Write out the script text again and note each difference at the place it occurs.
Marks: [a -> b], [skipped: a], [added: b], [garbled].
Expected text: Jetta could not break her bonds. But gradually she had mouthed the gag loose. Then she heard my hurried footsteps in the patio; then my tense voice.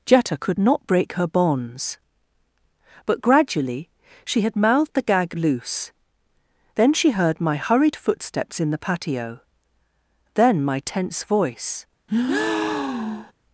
Jetta could not break her bonds. But gradually she had mouthed the gag loose. Then she heard my hurried footsteps in the patio; then my tense voice.